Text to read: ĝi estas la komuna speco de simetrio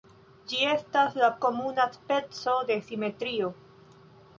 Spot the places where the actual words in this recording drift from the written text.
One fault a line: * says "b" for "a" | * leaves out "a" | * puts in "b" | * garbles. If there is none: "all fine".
all fine